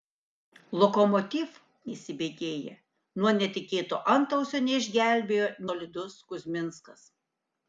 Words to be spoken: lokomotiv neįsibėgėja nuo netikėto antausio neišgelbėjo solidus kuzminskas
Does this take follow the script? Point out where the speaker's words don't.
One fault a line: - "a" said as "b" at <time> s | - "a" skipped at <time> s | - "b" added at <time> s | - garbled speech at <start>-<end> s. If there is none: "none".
none